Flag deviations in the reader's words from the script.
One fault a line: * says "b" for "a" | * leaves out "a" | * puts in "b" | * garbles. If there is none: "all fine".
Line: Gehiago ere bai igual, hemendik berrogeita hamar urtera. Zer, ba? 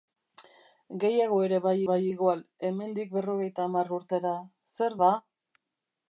* puts in "bai"